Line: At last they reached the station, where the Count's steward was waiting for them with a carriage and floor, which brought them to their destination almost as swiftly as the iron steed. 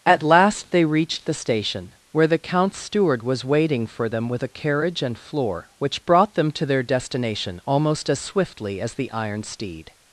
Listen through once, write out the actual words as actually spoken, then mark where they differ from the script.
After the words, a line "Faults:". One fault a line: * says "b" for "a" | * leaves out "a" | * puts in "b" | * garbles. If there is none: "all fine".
At last they reached the station, where the Count's steward was waiting for them with a carriage and floor, which brought them to their destination almost as swiftly as the iron steed.
Faults:
all fine